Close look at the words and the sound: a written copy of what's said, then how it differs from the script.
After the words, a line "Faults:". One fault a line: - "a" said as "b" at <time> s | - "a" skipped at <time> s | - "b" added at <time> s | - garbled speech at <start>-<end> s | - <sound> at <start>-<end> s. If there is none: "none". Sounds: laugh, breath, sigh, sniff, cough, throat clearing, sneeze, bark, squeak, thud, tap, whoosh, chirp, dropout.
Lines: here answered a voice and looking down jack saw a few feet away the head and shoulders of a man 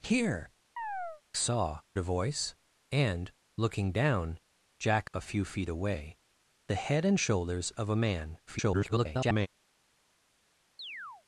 here saw a voice and looking down jack a few feet away the head and shoulders of a man [garbled]
Faults:
- chirp at 0.8-1.2 s
- "answered" said as "saw" at 1.4 s
- "saw" skipped at 5.1 s
- garbled speech at 8.5-9.5 s
- chirp at 10.8-11.2 s